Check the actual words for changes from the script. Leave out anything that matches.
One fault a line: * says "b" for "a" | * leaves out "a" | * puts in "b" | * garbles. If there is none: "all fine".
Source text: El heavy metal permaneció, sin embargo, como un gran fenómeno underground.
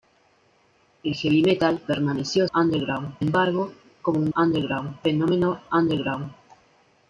* says "underground" for "sin"
* says "underground" for "gran"